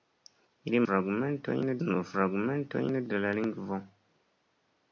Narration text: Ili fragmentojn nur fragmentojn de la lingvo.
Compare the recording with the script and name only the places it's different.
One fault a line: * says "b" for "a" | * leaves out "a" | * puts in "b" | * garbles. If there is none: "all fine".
all fine